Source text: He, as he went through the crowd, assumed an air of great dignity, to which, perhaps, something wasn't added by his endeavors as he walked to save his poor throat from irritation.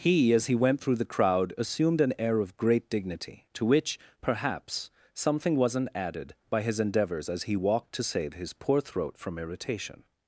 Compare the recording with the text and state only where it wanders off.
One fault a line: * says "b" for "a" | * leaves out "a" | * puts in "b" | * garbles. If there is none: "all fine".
all fine